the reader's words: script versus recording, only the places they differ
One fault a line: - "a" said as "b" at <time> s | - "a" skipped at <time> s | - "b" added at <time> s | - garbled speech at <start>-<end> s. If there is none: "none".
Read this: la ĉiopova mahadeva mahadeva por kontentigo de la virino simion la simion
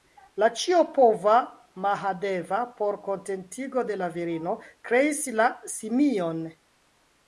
- "mahadeva" skipped at 2.6 s
- "simion" said as "kreis" at 4.9 s